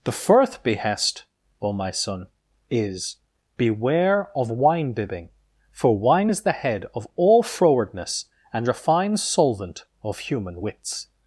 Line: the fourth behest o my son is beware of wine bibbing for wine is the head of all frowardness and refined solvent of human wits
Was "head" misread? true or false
false